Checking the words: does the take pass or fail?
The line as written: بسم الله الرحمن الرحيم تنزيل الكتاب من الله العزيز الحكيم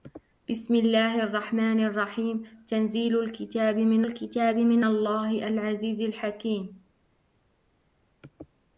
fail